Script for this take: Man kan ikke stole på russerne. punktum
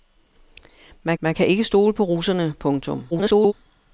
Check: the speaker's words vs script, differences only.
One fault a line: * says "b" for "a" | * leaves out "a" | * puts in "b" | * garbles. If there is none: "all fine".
* puts in "man"
* garbles